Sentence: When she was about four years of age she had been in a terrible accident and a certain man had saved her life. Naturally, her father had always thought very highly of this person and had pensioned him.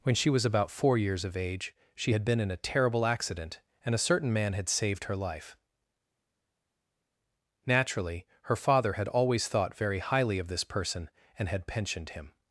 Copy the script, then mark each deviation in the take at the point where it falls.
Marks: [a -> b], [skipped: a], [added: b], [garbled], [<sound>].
When she was about four years of age she had been in a terrible accident and a certain man had saved her life. Naturally, her father had always thought very highly of this person and had pensioned him.